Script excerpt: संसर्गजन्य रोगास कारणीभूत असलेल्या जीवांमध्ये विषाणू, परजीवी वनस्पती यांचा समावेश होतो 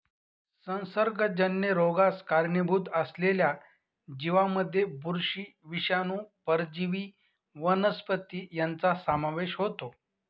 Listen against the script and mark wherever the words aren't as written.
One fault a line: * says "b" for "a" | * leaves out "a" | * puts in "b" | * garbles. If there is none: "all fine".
* puts in "बुरशी"